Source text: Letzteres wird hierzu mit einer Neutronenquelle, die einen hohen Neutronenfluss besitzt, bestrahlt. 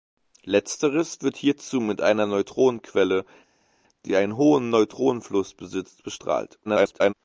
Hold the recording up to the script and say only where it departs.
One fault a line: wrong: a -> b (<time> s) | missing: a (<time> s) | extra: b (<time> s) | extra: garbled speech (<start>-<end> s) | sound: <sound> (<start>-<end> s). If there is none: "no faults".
extra: garbled speech (6.6-7.1 s)